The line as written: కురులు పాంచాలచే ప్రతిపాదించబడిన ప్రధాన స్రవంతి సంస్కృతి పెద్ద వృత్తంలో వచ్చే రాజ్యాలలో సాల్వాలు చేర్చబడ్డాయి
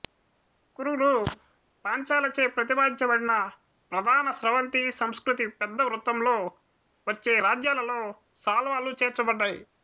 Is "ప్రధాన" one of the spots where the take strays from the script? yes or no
no